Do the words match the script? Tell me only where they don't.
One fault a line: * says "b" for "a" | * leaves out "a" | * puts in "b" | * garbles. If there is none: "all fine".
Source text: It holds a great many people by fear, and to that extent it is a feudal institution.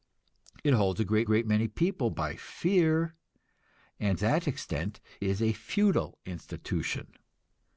* puts in "great"
* leaves out "to"
* leaves out "it"